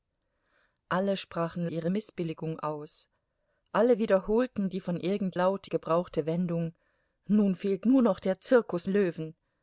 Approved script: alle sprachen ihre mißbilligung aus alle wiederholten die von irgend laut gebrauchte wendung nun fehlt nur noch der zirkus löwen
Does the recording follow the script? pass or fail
pass